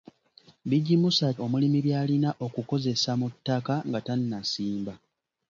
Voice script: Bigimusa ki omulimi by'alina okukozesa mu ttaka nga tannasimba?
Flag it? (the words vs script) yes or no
yes